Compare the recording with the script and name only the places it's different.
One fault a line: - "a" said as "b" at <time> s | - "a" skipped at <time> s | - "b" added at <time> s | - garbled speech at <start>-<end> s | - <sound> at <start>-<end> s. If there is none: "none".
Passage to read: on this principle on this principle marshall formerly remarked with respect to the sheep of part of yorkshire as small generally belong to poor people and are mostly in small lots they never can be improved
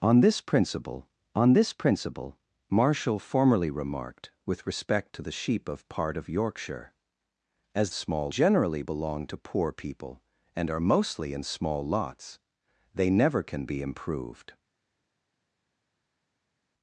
none